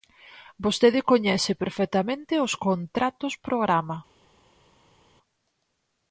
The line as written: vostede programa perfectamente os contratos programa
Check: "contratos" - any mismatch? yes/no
no